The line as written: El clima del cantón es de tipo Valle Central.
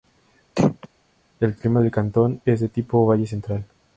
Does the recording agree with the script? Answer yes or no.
yes